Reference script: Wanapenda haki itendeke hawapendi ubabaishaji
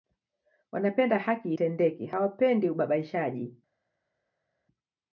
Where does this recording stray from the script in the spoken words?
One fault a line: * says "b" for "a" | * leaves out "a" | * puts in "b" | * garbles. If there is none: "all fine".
all fine